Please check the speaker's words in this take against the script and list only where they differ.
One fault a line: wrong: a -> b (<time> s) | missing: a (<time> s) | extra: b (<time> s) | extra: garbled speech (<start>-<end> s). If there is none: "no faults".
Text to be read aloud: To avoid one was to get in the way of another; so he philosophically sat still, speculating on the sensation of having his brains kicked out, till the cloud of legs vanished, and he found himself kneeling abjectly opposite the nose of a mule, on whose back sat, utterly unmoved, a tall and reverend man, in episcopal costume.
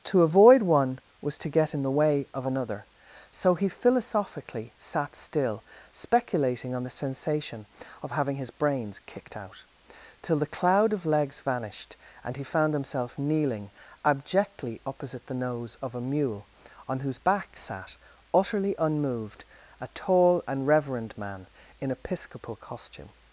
no faults